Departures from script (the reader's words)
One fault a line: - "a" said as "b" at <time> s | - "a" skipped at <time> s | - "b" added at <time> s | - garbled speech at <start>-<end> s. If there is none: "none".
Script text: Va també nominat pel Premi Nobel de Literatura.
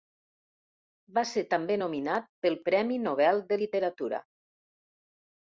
- "ser" added at 1.3 s